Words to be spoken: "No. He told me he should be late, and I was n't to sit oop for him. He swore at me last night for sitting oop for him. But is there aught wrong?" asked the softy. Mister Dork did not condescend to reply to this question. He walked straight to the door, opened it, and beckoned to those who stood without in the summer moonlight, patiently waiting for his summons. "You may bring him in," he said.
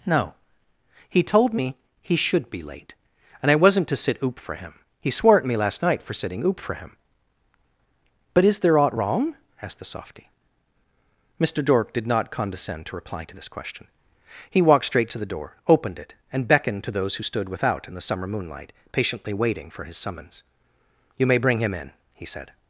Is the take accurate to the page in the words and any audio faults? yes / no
yes